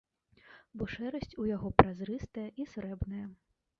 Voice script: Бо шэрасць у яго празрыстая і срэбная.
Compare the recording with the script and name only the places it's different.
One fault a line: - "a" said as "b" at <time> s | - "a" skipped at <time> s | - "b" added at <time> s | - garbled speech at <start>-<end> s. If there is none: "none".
none